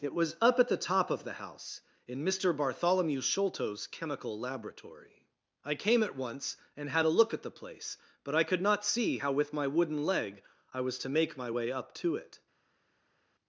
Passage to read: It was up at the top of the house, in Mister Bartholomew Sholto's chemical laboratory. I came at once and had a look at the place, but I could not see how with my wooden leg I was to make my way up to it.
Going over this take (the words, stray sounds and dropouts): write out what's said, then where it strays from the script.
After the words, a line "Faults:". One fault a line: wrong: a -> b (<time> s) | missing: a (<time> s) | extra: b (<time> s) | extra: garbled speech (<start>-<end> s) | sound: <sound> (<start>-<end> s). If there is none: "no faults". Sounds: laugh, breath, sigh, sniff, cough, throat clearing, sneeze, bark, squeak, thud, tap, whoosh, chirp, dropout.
It was up at the top of the house, in Mister Bartholomew Sholto's chemical laboratory. I came at once and had a look at the place, but I could not see how with my wooden leg I was to make my way up to it.
Faults:
no faults